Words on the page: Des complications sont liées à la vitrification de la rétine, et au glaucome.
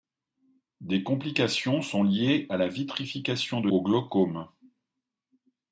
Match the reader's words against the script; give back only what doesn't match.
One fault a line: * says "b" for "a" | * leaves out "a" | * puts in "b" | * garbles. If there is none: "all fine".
* leaves out "la rétine et"